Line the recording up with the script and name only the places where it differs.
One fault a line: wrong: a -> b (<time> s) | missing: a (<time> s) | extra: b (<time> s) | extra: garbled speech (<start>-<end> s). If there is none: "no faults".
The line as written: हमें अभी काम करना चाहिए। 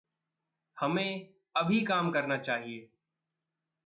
no faults